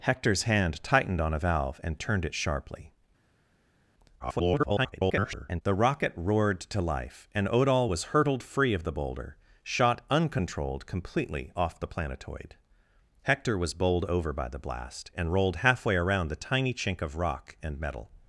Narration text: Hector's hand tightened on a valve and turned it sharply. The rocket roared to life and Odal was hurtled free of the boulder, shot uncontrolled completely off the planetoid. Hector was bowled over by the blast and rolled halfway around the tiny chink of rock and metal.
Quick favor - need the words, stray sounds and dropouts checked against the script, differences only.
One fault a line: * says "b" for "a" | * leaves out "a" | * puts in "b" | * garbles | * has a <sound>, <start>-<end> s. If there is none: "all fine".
* garbles